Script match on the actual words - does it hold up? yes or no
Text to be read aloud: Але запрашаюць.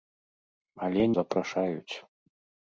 yes